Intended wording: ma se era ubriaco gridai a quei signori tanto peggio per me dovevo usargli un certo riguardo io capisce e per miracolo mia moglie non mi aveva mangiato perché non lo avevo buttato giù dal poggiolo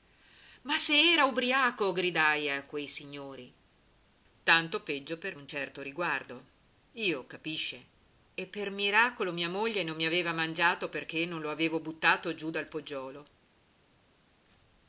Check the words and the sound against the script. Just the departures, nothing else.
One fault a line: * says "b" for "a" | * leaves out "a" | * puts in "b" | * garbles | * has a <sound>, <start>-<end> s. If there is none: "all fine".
* leaves out "me dovevo usargli"